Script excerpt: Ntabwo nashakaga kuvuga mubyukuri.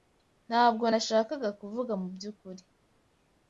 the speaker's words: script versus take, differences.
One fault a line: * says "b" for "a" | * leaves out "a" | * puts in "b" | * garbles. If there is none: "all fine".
all fine